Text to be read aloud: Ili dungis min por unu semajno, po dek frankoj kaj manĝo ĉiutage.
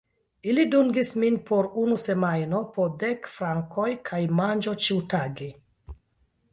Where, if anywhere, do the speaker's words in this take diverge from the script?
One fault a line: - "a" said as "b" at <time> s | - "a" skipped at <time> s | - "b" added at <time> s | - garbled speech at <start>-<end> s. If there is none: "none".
none